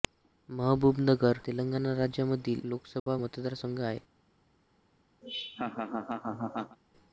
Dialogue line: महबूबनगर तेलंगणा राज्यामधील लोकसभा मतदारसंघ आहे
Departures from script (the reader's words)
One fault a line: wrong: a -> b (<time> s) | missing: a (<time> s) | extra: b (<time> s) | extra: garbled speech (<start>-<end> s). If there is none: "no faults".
no faults